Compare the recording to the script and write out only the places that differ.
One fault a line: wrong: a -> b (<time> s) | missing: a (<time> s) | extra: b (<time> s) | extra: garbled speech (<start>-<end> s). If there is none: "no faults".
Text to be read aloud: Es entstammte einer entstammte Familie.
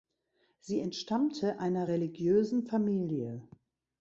wrong: Es -> Sie (0.6 s)
wrong: entstammte -> religiösen (1.9 s)